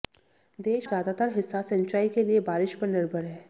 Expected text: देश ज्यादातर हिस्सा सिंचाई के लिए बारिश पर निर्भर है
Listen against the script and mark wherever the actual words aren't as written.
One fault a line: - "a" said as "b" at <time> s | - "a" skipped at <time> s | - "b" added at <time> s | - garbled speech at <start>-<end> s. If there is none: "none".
none